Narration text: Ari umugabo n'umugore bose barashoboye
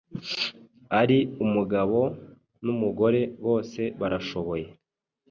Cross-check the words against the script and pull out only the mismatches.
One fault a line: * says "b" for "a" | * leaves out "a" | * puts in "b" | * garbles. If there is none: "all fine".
all fine